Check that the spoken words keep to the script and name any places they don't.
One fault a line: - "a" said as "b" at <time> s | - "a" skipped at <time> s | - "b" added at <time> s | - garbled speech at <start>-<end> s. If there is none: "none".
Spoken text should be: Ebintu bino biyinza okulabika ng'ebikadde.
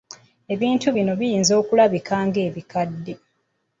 none